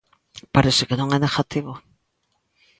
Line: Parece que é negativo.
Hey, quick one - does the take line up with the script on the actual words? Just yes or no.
no